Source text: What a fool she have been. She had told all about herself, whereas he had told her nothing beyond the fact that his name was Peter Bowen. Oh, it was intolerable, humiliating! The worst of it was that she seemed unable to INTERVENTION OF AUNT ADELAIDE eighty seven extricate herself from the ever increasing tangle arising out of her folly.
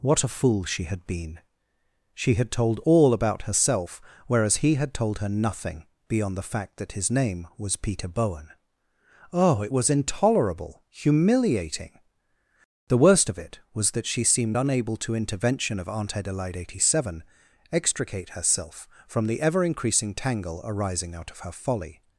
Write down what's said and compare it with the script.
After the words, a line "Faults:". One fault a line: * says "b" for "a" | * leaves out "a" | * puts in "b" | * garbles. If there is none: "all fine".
What a fool she had been. She had told all about herself, whereas he had told her nothing beyond the fact that his name was Peter Bowen. Oh, it was intolerable, humiliating! The worst of it was that she seemed unable to INTERVENTION OF AUNT ADELAIDE eighty seven extricate herself from the ever increasing tangle arising out of her folly.
Faults:
* says "had" for "have"